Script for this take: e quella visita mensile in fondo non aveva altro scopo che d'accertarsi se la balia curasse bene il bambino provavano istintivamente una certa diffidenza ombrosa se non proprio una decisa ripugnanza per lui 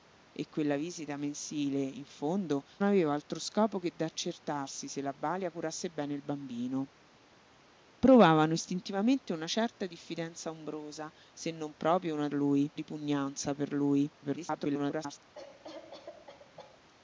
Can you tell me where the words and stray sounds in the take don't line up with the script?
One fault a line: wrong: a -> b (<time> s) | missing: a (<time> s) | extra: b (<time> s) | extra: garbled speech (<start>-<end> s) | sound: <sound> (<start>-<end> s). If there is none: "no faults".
missing: non (2.6 s)
wrong: decisa -> lui (12.3 s)
extra: garbled speech (14.2-15.2 s)
sound: cough (15.3-16.8 s)